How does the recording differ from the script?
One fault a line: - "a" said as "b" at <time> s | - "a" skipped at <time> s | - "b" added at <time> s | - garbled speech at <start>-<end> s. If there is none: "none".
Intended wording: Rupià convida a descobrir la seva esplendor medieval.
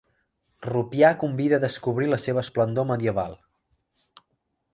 none